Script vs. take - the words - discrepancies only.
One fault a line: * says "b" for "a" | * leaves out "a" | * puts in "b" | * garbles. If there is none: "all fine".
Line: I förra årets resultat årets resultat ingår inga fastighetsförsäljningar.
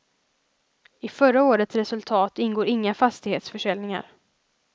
* leaves out "årets resultat"